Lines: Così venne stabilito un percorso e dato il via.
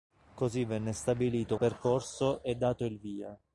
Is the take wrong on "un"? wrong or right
wrong